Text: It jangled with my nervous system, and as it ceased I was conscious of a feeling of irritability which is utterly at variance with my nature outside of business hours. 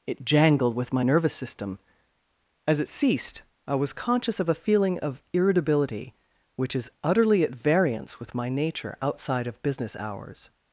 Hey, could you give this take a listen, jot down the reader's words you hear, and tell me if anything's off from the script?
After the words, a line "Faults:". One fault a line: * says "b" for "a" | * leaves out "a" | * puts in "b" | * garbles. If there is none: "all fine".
It jangled with my nervous system, as it ceased I was conscious of a feeling of irritability which is utterly at variance with my nature outside of business hours.
Faults:
* leaves out "and"